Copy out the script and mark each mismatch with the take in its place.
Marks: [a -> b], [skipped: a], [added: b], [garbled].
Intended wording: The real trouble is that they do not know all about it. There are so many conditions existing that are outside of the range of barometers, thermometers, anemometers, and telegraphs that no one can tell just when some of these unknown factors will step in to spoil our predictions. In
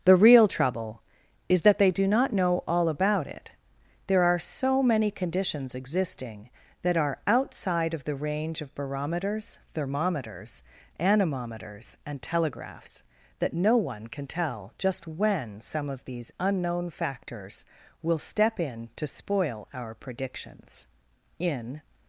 The real trouble is that they do not know all about it. There are so many conditions existing that are outside of the range of barometers, thermometers, anemometers, and telegraphs that no one can tell just when some of these unknown factors will step in to spoil our predictions. In